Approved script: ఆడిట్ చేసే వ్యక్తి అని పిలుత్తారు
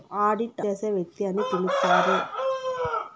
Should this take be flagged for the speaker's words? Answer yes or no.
no